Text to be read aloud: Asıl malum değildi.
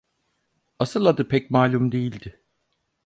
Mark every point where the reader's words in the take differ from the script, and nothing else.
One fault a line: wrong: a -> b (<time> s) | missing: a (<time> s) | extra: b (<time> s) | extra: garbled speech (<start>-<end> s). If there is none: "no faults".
extra: adı pek (1.1 s)